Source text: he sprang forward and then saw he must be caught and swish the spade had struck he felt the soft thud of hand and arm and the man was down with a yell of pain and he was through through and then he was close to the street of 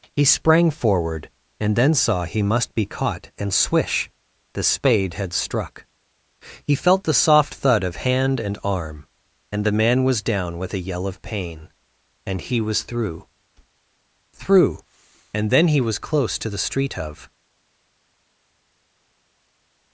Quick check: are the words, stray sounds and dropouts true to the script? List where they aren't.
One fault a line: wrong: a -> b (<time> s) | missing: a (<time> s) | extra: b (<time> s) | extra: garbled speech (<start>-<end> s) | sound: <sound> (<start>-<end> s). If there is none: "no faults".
no faults